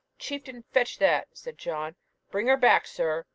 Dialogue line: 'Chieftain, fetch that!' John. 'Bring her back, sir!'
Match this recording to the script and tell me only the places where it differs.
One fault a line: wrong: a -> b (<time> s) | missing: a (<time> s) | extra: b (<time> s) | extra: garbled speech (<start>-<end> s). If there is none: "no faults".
extra: said (1.3 s)